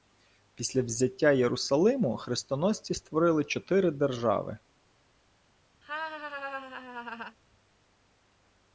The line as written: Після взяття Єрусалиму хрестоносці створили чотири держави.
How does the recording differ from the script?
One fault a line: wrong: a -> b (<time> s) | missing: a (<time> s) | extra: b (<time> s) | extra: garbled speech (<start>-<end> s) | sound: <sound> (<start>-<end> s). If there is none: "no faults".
sound: laugh (5.8-7.4 s)